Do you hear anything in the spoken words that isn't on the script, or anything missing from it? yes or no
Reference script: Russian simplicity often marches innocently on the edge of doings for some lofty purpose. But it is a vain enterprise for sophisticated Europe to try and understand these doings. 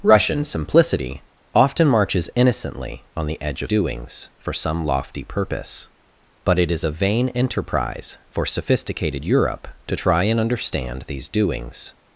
no